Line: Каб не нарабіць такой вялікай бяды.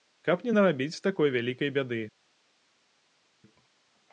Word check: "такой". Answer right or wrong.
right